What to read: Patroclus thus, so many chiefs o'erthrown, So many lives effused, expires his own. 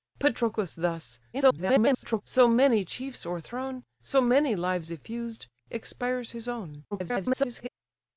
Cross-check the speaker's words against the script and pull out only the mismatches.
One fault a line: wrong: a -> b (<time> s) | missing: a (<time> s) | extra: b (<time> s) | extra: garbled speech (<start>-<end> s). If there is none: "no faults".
extra: garbled speech (1.3-2.2 s)
extra: garbled speech (6.9-7.7 s)